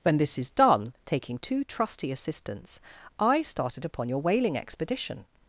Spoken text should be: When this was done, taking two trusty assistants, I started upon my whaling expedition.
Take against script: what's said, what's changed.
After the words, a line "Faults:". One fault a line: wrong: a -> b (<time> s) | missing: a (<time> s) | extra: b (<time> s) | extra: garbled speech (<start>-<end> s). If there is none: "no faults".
When this is done, taking two trusty assistants, I started upon your whaling expedition.
Faults:
wrong: was -> is (0.4 s)
wrong: my -> your (4.1 s)